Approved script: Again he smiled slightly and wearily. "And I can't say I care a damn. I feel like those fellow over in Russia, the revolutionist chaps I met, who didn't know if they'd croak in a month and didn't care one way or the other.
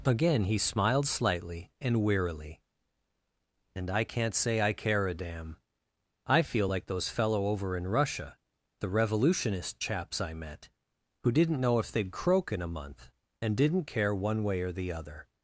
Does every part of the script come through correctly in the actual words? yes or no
yes